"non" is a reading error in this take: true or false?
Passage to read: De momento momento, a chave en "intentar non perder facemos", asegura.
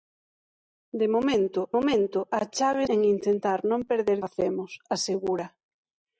false